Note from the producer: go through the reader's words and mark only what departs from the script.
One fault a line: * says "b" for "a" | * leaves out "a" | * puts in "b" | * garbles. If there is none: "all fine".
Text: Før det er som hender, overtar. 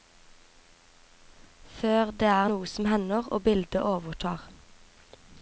* puts in "noe"
* puts in "og bildet"